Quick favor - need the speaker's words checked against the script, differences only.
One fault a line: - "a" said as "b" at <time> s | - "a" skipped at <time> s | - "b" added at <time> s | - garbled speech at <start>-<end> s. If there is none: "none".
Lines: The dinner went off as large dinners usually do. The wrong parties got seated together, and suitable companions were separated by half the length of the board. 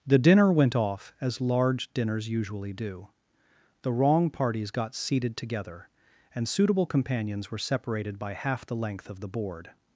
none